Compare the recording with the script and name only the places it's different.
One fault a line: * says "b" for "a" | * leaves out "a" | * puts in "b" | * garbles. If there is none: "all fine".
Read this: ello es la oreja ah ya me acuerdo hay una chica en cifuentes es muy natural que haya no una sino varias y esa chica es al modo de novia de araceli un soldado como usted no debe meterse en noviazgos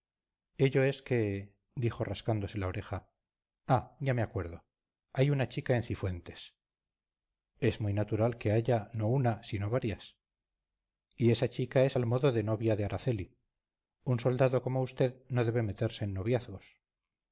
* puts in "que dijo rascándose"